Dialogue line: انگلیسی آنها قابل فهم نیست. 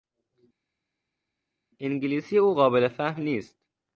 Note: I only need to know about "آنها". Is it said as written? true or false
false